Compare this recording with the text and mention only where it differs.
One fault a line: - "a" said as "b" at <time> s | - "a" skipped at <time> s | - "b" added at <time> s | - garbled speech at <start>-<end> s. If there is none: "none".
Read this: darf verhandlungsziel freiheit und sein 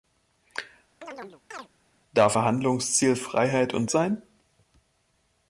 none